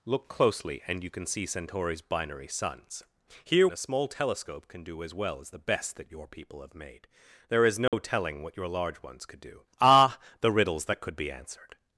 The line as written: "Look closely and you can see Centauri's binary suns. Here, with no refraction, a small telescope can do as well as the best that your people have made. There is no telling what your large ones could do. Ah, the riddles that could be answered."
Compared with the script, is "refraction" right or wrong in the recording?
wrong